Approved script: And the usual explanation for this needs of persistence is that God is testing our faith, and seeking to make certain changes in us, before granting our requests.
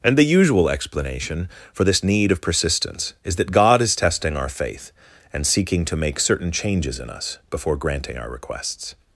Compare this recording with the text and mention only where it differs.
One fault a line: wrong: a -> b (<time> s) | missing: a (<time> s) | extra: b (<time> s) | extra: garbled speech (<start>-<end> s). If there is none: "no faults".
wrong: needs -> need (2.0 s)